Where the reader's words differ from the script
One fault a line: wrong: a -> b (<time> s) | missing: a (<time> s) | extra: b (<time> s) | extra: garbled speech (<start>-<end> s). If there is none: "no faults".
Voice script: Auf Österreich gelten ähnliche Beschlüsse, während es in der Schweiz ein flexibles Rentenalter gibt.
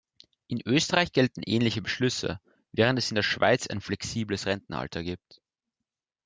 wrong: Auf -> In (0.5 s)